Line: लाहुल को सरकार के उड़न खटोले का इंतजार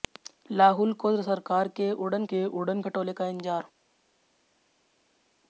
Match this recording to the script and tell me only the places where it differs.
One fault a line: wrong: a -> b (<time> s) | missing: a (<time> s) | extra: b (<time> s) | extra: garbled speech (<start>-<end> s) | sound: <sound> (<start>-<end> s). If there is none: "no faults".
extra: के उड़न (2.3 s)